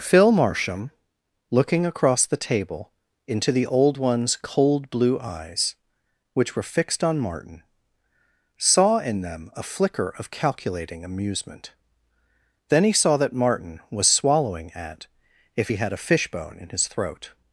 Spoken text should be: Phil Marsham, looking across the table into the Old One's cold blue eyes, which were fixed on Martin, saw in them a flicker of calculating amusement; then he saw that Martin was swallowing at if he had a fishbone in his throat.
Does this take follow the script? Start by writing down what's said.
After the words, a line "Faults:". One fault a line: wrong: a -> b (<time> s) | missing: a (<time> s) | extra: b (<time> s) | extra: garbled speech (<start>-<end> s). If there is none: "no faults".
Phil Marsham, looking across the table into the Old One's cold blue eyes, which were fixed on Martin, saw in them a flicker of calculating amusement; then he saw that Martin was swallowing at if he had a fishbone in his throat.
Faults:
no faults